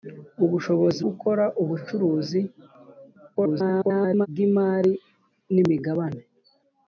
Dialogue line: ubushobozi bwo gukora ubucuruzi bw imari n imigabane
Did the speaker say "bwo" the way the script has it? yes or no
no